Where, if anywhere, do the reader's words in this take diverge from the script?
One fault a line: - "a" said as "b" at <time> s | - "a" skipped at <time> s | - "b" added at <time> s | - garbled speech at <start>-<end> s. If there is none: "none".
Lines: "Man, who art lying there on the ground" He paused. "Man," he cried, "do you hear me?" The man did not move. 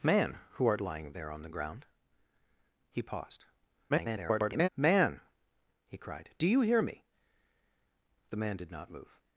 - garbled speech at 3.9-4.7 s